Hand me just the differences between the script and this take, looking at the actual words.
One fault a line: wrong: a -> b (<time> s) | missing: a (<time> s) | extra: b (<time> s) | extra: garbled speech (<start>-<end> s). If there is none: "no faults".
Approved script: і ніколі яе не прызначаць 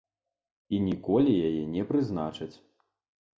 no faults